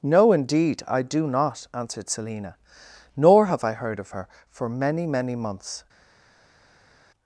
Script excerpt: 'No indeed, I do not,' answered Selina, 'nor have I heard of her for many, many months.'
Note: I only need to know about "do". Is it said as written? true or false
true